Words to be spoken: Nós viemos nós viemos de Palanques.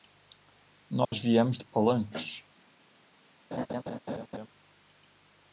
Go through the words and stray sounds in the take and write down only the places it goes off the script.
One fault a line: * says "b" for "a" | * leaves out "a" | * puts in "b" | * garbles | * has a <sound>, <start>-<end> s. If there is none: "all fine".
* has a dropout, 1.0-1.1 s
* leaves out "nós viemos"
* has a laugh, 3.5-4.5 s